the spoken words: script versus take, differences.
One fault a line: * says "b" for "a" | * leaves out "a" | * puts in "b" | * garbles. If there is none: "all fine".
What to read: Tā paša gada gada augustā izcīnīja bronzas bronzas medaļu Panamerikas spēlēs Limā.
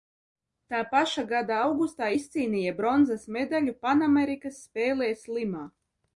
* leaves out "gada"
* leaves out "bronzas"